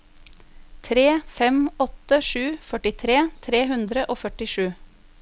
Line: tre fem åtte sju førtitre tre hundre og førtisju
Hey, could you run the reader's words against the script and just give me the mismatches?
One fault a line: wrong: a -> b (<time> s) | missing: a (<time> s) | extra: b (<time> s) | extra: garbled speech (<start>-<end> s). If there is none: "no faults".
no faults